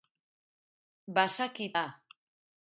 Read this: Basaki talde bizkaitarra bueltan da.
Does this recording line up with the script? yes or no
no